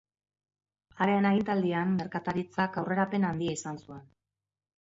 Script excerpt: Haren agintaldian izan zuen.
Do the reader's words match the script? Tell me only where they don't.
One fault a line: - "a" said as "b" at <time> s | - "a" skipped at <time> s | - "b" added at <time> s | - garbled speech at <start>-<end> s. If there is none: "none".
- "merkataritzak aurrerapen handia" added at 2.0 s